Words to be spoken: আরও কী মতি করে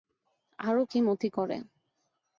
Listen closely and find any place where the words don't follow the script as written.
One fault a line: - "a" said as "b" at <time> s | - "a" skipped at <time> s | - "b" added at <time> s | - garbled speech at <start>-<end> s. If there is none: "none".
none